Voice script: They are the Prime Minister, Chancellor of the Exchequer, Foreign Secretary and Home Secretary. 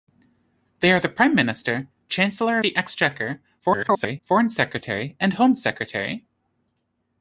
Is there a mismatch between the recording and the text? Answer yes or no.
yes